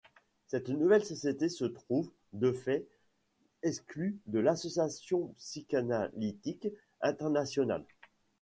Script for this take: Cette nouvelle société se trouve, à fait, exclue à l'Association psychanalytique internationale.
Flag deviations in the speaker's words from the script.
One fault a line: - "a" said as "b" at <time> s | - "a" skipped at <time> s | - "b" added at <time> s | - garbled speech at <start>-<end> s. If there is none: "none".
- "à" said as "de" at 2.3 s
- "à" said as "de" at 4.3 s